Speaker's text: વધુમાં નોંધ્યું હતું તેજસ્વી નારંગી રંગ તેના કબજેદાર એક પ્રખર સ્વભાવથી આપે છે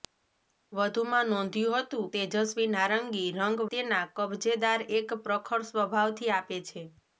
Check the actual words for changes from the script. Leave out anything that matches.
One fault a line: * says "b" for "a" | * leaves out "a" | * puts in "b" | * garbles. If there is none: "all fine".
all fine